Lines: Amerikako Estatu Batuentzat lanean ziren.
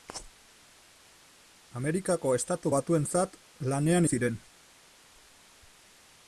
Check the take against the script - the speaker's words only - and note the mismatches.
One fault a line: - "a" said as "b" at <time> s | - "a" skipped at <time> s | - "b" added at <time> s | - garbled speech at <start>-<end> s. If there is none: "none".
none